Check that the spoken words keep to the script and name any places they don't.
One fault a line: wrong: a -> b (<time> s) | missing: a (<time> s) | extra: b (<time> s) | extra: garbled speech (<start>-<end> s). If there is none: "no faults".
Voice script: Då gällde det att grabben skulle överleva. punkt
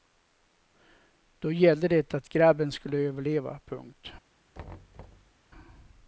no faults